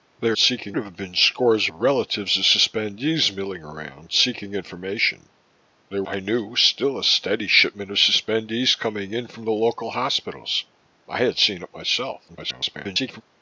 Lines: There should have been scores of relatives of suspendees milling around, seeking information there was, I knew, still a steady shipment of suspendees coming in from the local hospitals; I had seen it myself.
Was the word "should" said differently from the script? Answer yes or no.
yes